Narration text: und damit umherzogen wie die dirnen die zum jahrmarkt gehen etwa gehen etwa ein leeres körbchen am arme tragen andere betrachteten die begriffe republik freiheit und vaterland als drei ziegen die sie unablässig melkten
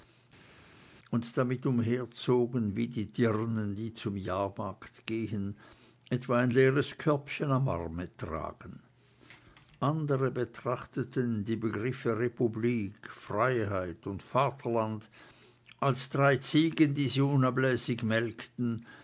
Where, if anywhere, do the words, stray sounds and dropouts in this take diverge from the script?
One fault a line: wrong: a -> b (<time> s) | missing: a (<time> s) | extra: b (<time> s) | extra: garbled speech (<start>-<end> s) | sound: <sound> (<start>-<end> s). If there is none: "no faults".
missing: gehen etwa (6.4 s)